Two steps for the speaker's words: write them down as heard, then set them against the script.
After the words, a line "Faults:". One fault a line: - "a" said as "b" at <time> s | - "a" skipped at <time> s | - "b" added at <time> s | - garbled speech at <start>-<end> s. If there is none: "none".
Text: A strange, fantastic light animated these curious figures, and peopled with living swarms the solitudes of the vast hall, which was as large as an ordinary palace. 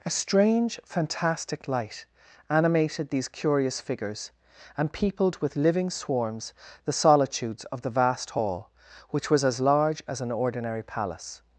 A strange, fantastic light animated these curious figures, and peopled with living swarms the solitudes of the vast hall, which was as large as an ordinary palace.
Faults:
none